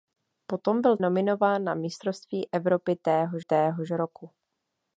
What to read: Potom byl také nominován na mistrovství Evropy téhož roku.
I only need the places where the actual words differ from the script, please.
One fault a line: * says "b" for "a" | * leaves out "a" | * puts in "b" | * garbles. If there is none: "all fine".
* leaves out "také"
* puts in "téhož"